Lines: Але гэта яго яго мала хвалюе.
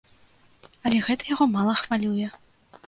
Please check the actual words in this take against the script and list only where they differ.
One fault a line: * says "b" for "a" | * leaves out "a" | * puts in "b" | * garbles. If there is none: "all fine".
* leaves out "яго"